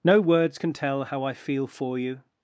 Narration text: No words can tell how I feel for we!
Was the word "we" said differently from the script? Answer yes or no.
yes